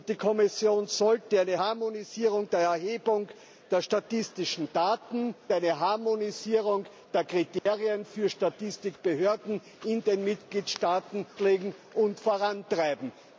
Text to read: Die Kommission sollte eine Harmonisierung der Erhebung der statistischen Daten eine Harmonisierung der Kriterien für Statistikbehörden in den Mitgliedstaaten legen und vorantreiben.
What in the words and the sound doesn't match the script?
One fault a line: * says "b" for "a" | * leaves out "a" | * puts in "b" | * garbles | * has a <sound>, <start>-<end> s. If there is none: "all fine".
* has a dropout, 7.6-7.7 s